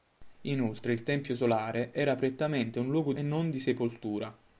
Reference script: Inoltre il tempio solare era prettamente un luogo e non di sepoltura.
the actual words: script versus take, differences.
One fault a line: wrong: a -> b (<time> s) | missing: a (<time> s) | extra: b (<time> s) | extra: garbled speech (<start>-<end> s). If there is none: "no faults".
no faults